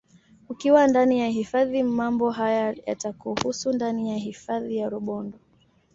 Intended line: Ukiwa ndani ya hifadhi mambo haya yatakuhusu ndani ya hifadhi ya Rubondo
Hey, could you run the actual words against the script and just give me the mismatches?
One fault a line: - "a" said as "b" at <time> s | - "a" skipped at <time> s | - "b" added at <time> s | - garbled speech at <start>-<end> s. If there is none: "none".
none